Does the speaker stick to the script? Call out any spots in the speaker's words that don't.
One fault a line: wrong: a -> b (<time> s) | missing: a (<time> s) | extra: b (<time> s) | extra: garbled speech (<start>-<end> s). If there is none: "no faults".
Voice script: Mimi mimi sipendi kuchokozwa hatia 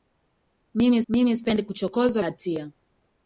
no faults